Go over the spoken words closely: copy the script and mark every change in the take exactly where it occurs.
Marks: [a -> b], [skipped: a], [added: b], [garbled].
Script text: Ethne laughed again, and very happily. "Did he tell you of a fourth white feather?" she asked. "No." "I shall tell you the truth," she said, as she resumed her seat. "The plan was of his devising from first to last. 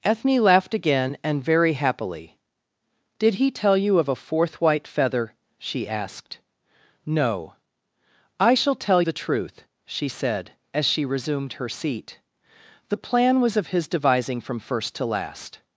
Ethne laughed again, and very happily. "Did he tell you of a fourth white feather?" she asked. "No." "I shall tell [skipped: you] the truth," she said, as she resumed her seat. "The plan was of his devising from first to last.